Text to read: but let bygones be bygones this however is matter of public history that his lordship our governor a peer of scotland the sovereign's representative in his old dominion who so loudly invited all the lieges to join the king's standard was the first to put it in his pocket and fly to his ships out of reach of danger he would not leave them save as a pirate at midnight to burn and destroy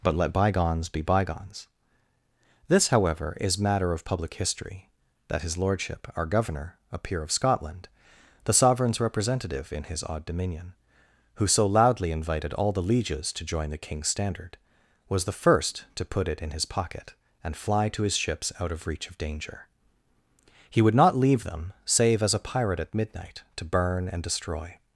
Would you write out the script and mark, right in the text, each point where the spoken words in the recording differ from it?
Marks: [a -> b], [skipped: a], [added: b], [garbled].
but let bygones be bygones this however is matter of public history that his lordship our governor a peer of scotland the sovereign's representative in his [old -> odd] dominion who so loudly invited all the lieges to join the king's standard was the first to put it in his pocket and fly to his ships out of reach of danger he would not leave them save as a pirate at midnight to burn and destroy